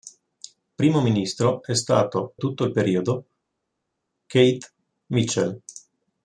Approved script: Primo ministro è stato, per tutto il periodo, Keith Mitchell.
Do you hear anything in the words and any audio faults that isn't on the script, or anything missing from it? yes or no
yes